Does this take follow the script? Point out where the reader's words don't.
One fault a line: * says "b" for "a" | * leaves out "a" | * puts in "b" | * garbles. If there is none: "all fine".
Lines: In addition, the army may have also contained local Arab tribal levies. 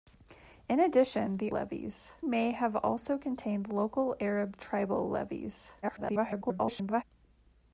* says "levies" for "army"
* garbles